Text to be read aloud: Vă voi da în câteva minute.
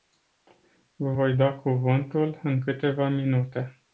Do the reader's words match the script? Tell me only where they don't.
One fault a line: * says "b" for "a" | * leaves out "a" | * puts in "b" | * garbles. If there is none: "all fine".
* puts in "cuvântul"